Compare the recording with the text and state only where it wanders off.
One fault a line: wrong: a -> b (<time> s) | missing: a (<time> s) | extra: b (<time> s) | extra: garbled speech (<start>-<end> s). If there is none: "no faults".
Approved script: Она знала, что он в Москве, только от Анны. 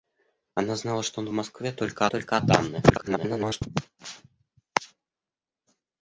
extra: только (2.1 s)
extra: garbled speech (2.9-3.6 s)